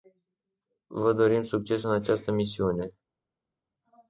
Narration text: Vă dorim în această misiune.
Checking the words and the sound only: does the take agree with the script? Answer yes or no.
no